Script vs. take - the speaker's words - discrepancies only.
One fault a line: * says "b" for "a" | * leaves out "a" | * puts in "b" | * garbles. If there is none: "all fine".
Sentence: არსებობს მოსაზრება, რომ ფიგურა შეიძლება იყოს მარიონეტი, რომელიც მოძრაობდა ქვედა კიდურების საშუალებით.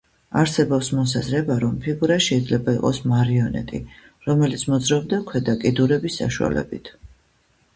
all fine